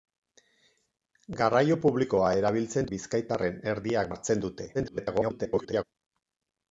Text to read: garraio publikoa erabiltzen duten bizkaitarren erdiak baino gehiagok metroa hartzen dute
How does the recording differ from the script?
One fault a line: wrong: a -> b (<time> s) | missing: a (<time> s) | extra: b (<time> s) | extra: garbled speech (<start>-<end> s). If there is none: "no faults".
missing: duten (2.9 s)
missing: baino gehiagok metroa (4.1 s)
extra: garbled speech (4.7-5.8 s)